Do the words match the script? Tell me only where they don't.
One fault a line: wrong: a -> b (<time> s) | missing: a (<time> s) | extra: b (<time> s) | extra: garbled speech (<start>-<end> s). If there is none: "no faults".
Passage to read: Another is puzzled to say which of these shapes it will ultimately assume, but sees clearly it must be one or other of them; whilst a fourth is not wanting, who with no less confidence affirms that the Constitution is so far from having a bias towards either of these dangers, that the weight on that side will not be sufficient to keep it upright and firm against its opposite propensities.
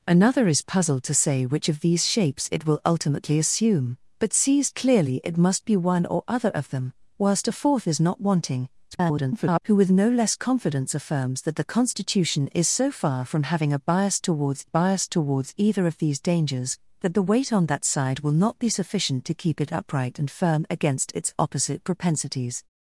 extra: garbled speech (8.9-9.6 s)
extra: bias towards (14.6 s)